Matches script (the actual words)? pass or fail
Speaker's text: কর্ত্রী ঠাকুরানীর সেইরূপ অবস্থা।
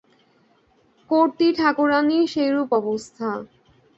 pass